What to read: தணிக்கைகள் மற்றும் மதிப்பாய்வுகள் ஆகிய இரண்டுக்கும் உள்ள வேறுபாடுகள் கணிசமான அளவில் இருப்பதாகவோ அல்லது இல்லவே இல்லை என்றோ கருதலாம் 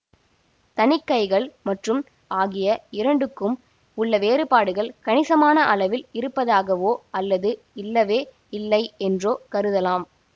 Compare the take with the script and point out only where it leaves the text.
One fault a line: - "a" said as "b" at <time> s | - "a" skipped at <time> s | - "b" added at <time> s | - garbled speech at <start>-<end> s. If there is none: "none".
- "மதிப்பாய்வுகள்" skipped at 2.0 s